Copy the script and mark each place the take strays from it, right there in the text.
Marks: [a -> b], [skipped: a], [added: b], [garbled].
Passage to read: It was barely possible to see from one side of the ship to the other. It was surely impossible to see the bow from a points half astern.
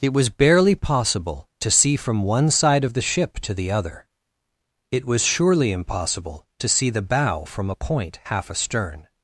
It was barely possible to see from one side of the ship to the other. It was surely impossible to see the bow from a [points -> point] half astern.